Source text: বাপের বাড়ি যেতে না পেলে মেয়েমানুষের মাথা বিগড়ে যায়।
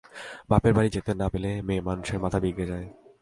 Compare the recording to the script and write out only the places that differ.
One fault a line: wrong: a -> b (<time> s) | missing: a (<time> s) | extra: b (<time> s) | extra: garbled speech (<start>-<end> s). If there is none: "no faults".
no faults